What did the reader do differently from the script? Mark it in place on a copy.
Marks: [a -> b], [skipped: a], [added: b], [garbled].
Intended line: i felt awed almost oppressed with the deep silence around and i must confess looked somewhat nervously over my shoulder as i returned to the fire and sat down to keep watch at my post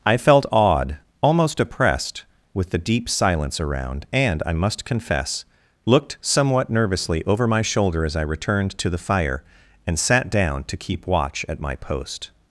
i felt awed almost oppressed with the deep silence around and i must confess looked somewhat nervously over my shoulder as i returned to the fire and sat down to keep watch at my post